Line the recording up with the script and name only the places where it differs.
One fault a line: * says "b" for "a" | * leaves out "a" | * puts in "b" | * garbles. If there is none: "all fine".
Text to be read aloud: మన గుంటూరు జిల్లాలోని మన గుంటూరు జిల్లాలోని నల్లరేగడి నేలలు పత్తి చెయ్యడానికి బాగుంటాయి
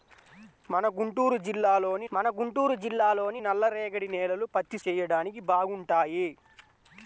all fine